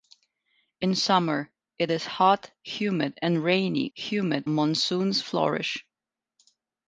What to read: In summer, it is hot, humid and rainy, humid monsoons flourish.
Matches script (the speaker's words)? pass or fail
pass